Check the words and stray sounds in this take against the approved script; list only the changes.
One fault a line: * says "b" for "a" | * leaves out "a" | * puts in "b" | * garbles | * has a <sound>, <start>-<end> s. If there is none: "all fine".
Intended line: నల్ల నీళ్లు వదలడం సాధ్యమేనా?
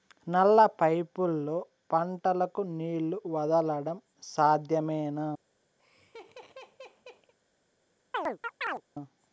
* puts in "పైపుల్లో పంటలకు"
* has a laugh, 5.8-7.3 s
* has a chirp, 8.1-8.8 s